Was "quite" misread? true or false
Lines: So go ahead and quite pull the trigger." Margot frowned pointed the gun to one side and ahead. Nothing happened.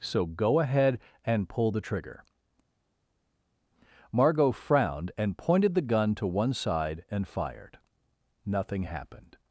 true